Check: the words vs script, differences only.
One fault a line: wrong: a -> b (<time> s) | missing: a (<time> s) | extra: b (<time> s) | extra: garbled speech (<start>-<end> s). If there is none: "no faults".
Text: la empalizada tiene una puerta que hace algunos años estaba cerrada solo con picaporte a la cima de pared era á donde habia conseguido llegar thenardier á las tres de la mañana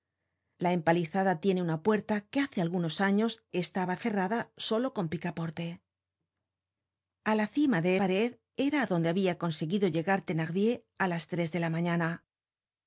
no faults